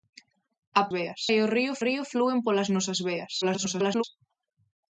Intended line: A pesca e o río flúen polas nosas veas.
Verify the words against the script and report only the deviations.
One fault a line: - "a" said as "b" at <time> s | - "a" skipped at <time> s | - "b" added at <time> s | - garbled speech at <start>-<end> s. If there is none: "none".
- "pesca" said as "veas" at 1.0 s
- "río" added at 1.9 s
- garbled speech at 3.4-4.0 s